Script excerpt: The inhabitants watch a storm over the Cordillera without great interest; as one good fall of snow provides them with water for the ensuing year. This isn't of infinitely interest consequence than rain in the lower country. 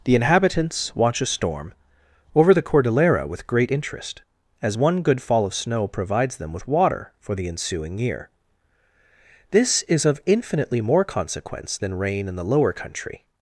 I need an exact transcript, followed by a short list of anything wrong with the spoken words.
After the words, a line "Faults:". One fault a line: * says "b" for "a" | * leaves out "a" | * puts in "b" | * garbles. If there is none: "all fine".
The inhabitants watch a storm over the Cordillera with great interest; as one good fall of snow provides them with water for the ensuing year. This is of infinitely more consequence than rain in the lower country.
Faults:
* says "with" for "without"
* says "is" for "isn't"
* says "more" for "interest"